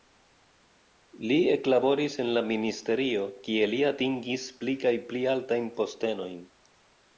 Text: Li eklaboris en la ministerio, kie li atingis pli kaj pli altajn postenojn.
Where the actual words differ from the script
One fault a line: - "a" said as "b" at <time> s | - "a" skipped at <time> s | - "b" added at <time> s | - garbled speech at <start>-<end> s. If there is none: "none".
none